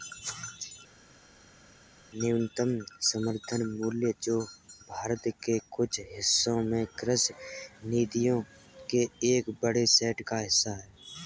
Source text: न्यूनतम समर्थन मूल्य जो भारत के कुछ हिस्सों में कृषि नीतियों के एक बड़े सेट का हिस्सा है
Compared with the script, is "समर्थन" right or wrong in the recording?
right